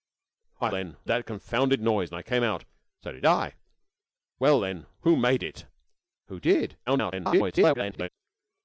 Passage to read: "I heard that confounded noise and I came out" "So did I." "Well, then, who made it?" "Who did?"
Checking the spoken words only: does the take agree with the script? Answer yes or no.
no